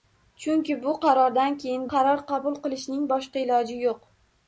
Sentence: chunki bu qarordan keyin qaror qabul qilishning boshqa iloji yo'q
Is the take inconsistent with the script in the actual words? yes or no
no